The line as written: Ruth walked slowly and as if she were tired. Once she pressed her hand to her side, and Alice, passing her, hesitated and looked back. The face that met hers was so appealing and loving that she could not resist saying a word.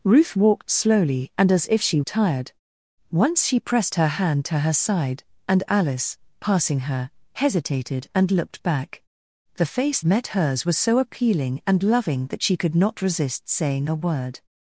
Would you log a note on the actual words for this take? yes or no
yes